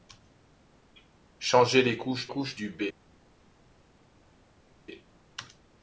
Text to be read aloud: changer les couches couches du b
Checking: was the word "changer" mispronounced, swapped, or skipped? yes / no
no